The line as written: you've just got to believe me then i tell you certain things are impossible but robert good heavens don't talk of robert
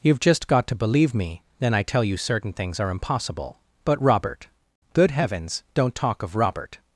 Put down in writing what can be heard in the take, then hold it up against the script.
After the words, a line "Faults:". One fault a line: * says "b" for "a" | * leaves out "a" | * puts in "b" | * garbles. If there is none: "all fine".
you've just got to believe me then i tell you certain things are impossible but robert good heavens don't talk of robert
Faults:
all fine